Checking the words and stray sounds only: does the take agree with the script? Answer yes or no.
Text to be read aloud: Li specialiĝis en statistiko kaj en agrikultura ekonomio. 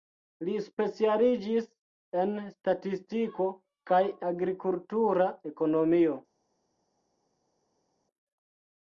no